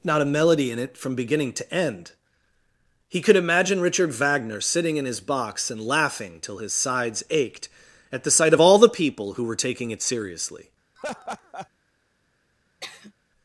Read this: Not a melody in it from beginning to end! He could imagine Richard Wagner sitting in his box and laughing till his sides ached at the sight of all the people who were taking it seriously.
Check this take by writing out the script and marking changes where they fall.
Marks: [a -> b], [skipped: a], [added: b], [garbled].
Not a melody in it from beginning to end! He could imagine Richard Wagner sitting in his box and laughing till his sides ached at the sight of all the people who were taking it seriously.